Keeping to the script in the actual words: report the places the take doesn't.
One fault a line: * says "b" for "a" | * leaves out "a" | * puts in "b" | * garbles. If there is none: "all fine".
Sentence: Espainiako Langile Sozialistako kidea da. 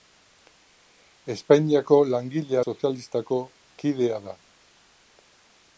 all fine